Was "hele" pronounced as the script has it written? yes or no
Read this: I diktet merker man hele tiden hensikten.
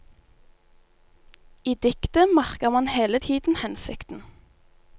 yes